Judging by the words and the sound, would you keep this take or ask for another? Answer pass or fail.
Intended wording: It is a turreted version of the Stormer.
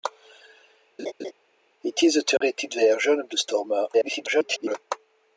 fail